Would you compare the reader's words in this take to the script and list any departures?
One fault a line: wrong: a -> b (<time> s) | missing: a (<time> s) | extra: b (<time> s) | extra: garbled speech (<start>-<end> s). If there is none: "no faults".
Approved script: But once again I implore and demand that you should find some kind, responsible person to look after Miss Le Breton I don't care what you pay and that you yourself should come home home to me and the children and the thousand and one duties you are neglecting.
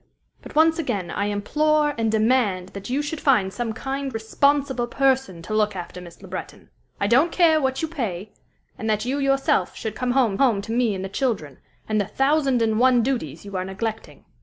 no faults